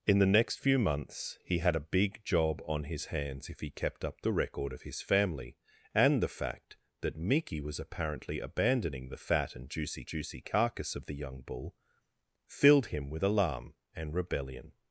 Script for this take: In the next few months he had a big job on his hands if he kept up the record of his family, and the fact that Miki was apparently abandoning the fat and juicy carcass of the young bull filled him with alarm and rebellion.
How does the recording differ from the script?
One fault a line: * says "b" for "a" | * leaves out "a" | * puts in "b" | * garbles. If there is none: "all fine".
* puts in "juicy"